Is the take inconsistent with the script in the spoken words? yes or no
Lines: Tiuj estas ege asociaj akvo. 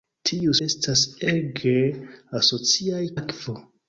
no